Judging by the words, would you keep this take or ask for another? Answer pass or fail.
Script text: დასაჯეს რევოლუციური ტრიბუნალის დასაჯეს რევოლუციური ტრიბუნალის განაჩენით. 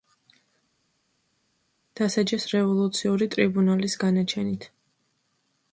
fail